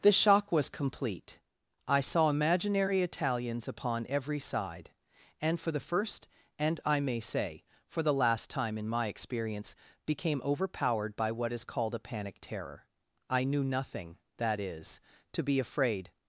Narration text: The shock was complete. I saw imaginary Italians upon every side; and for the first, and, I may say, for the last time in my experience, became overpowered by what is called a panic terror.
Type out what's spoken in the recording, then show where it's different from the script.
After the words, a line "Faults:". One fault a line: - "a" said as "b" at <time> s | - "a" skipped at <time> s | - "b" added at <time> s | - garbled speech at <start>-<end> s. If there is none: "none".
The shock was complete. I saw imaginary Italians upon every side; and for the first, and, I may say, for the last time in my experience, became overpowered by what is called a panic terror. I knew nothing, that is, to be afraid
Faults:
- "I knew nothing that is to be afraid" added at 13.3 s